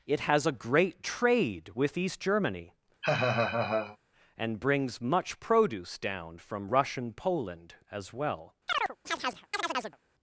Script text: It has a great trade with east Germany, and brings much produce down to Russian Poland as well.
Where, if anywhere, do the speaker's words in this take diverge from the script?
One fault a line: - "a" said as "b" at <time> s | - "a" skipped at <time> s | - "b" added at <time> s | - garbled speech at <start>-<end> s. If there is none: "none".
- "to" said as "from" at 6.4 s